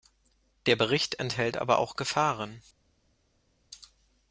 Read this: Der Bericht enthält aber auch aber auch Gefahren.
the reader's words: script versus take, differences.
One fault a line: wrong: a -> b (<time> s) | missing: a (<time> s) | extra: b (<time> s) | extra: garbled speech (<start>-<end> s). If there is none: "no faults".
missing: aber auch (1.9 s)